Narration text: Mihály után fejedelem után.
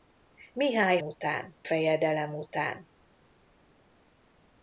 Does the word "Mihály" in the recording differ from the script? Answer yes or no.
no